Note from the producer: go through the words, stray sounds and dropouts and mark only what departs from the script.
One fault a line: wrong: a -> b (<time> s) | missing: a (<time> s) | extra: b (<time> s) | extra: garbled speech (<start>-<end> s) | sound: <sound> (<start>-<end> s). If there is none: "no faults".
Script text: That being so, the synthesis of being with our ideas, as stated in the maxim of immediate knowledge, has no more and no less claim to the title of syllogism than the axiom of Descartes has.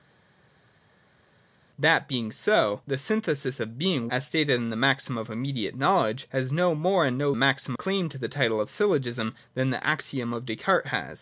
missing: with our ideas (4.1 s)
wrong: less -> maxim (7.3 s)